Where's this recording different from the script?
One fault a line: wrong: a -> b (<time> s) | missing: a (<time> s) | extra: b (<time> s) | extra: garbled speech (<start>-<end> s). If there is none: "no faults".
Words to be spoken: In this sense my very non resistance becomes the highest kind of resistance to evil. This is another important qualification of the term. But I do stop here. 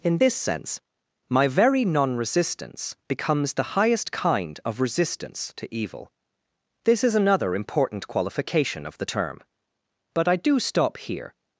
no faults